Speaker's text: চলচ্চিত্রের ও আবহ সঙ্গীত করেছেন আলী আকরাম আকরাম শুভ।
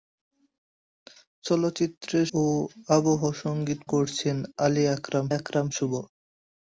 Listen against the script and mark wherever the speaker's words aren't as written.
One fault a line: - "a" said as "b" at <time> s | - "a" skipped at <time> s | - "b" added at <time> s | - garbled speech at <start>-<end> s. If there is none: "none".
none